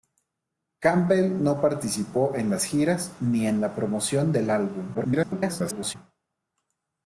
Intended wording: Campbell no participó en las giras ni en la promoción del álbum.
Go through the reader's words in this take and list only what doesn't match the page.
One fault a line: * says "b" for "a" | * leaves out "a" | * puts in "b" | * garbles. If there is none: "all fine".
* garbles